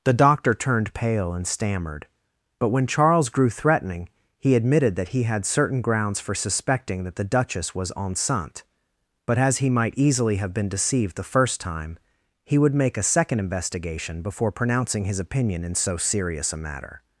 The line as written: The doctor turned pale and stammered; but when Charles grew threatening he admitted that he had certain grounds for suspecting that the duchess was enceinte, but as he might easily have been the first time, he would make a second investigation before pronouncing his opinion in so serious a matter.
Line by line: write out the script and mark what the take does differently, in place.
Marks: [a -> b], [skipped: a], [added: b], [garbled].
The doctor turned pale and stammered; but when Charles grew threatening he admitted that he had certain grounds for suspecting that the duchess was enceinte, but as he might easily have been [added: deceived] the first time, he would make a second investigation before pronouncing his opinion in so serious a matter.